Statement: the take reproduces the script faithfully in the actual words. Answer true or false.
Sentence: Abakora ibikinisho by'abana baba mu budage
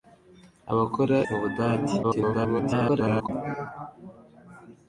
false